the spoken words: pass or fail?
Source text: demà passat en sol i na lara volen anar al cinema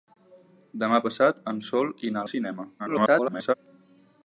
fail